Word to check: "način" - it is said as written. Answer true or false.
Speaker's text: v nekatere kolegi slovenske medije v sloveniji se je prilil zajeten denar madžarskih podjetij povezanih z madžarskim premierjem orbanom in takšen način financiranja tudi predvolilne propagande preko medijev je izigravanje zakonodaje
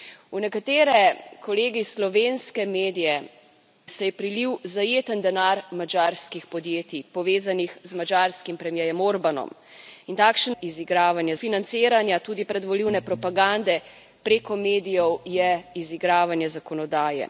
false